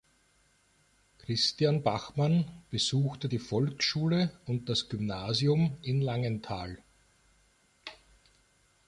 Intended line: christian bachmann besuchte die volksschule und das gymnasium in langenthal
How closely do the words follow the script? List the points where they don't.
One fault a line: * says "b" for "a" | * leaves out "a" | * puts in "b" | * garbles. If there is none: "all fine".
all fine